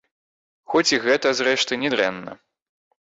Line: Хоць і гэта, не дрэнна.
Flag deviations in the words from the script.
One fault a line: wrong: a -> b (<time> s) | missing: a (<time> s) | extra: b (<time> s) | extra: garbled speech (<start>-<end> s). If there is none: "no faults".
extra: зрэшты (1.4 s)